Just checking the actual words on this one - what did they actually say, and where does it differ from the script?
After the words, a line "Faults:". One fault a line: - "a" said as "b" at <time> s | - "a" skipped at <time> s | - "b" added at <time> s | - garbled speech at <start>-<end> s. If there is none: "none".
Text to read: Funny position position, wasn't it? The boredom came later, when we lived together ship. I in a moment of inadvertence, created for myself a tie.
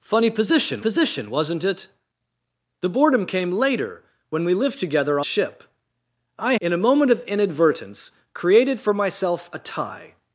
Funny position position, wasn't it? The boredom came later, when we lived together ship. I in a moment of inadvertence, created for myself a tie.
Faults:
none